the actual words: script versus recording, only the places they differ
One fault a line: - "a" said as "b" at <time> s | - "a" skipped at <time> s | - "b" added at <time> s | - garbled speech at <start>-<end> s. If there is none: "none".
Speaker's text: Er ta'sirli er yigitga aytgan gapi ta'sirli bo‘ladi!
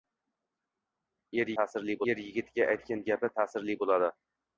none